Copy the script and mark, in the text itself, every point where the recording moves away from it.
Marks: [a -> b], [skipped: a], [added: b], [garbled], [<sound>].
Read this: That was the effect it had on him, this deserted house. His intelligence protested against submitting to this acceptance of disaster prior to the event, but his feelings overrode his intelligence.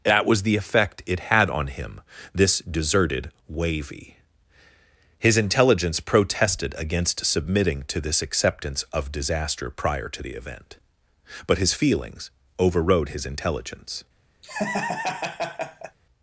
That was the effect it had on him, this deserted [house. -> wavy] His intelligence protested against submitting to this acceptance of disaster prior to the event, but his feelings overrode his intelligence. [laugh]